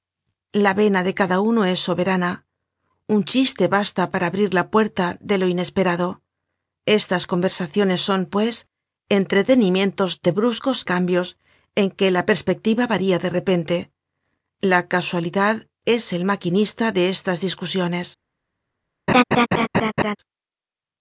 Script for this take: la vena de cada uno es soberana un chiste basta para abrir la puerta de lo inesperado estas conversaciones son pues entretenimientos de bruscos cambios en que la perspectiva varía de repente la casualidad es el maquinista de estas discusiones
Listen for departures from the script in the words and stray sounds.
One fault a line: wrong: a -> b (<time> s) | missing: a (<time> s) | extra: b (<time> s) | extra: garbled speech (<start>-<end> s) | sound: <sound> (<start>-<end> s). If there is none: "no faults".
sound: laugh (19.1-20.2 s)